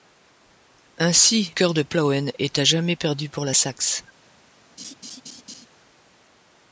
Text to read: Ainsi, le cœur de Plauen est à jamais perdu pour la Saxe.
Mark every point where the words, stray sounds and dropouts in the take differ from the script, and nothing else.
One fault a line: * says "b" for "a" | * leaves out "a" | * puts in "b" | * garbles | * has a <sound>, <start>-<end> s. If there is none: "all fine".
* leaves out "le"
* has a laugh, 4.8-5.7 s